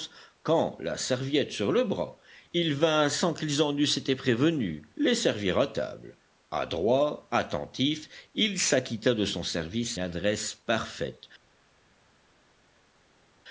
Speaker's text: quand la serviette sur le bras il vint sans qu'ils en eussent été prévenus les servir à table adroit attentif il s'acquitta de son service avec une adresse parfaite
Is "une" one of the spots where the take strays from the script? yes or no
yes